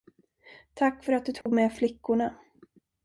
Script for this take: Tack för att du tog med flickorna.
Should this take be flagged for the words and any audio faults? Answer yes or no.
yes